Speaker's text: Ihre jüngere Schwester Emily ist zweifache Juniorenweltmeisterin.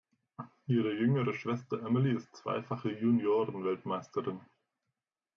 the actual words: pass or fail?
pass